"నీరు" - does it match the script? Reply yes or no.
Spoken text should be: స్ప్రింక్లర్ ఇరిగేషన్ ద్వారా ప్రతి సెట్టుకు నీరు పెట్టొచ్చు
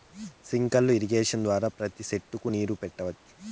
yes